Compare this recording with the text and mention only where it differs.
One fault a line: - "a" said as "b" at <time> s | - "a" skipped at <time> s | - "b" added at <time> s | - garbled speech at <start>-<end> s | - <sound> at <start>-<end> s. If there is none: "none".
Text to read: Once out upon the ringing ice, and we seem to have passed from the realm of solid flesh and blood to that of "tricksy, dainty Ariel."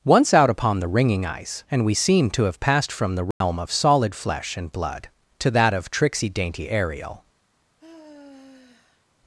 - dropout at 3.3-3.4 s
- sigh at 7.8-9.1 s